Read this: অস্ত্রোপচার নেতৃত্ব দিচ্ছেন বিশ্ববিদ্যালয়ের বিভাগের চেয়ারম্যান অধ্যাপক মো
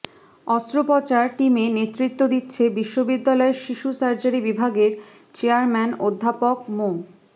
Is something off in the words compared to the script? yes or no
yes